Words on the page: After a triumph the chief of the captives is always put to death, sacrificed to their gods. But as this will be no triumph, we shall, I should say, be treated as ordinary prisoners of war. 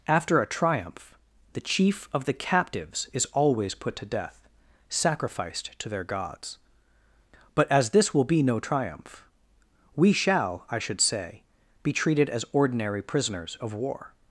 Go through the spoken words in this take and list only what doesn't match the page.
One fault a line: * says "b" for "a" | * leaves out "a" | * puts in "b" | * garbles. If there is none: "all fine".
all fine